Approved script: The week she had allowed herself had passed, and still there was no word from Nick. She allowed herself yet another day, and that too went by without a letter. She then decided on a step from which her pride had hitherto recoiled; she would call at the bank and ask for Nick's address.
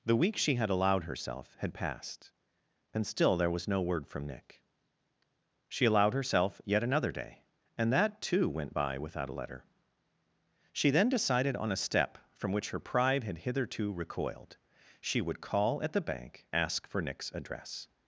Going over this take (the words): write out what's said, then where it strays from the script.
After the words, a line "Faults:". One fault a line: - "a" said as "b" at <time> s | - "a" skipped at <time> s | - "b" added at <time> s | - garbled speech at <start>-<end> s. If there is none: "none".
The week she had allowed herself had passed, and still there was no word from Nick. She allowed herself yet another day, and that too went by without a letter. She then decided on a step from which her pride had hitherto recoiled; she would call at the bank ask for Nick's address.
Faults:
- "and" skipped at 16.5 s